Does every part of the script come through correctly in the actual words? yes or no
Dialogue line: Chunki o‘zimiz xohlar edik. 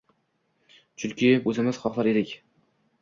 yes